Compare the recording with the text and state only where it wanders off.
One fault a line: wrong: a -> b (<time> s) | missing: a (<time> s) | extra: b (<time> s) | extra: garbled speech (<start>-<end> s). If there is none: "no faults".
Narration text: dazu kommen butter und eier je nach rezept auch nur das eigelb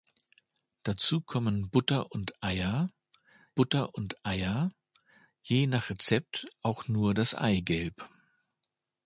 extra: butter und eier (3.5 s)